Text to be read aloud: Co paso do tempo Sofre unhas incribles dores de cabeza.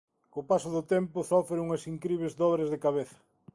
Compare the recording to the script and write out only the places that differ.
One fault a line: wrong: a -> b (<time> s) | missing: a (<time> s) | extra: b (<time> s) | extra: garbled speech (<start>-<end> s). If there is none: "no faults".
no faults